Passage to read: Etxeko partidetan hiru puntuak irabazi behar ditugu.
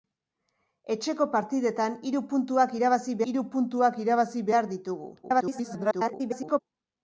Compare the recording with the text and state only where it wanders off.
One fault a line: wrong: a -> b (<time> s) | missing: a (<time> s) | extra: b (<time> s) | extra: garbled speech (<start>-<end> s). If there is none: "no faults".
extra: hiru puntuak irabazi (3.3 s)
extra: garbled speech (5.2-6.6 s)